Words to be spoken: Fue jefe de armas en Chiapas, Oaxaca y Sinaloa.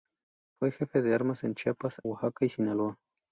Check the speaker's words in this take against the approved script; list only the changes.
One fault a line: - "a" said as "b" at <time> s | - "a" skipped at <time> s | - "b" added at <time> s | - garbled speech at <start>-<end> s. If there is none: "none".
none